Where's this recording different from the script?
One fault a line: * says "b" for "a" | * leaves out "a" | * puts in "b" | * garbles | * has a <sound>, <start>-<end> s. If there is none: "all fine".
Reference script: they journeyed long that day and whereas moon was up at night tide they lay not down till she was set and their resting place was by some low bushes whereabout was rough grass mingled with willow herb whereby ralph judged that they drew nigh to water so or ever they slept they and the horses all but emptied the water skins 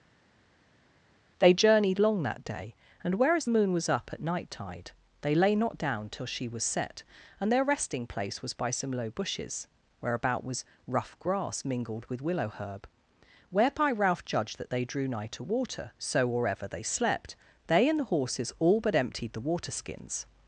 all fine